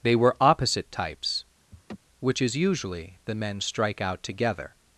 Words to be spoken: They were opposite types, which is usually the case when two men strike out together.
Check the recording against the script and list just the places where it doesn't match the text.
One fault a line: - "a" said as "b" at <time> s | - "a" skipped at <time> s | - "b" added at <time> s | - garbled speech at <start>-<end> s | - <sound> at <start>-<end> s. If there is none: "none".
- laugh at 1.7-2.0 s
- "case when two" skipped at 3.4 s